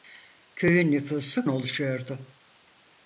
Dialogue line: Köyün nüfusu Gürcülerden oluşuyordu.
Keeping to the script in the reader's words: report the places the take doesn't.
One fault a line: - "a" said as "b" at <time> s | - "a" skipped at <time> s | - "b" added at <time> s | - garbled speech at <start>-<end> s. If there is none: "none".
- "Gürcülerden" skipped at 1.4 s